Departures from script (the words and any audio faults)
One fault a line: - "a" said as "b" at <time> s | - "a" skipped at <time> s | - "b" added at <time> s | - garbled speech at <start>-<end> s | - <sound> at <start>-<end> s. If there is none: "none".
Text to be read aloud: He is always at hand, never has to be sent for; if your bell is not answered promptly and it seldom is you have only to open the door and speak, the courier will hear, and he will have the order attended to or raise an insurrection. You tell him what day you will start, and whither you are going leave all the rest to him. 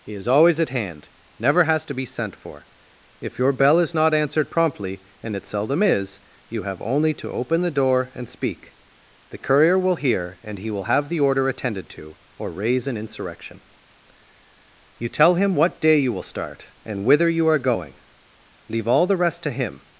none